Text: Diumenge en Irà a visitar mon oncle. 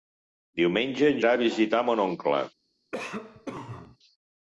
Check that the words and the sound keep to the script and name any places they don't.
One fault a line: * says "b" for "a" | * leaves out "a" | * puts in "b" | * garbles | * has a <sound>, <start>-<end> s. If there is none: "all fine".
* has a cough, 2.9-4.0 s